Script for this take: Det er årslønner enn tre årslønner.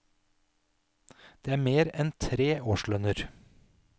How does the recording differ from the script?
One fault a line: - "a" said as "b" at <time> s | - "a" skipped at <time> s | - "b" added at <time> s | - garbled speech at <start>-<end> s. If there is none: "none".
- "årslønner" said as "mer" at 1.7 s